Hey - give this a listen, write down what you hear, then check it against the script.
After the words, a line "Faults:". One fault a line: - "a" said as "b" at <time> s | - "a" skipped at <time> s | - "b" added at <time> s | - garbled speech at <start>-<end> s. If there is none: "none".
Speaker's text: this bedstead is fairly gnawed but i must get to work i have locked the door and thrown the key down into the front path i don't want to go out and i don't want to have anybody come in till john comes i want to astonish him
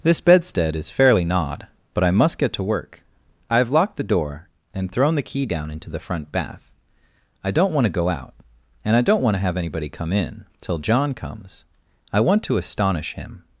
this bedstead is fairly gnawed but i must get to work i have locked the door and thrown the key down into the front bath i don't want to go out and i don't want to have anybody come in till john comes i want to astonish him
Faults:
- "path" said as "bath" at 6.3 s